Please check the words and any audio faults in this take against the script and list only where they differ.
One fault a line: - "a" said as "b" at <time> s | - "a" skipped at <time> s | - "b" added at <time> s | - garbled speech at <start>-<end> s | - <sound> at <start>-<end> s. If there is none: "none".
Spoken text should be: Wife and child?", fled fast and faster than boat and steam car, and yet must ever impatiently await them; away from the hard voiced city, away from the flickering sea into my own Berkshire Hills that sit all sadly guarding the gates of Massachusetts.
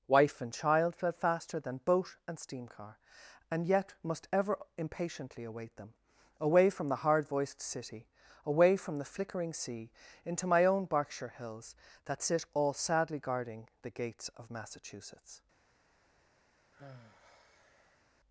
- "fast and" skipped at 1.1 s
- sigh at 16.7-18.1 s